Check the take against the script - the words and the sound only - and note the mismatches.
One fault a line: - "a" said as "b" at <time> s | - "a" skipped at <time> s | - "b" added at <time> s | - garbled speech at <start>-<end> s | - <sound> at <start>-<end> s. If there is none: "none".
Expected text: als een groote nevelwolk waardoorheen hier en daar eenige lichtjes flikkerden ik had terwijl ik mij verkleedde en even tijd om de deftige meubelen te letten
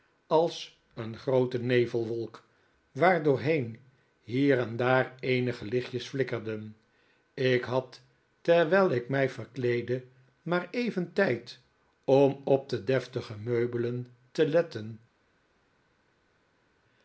- "en" said as "maar" at 10.4 s
- "op" added at 12.4 s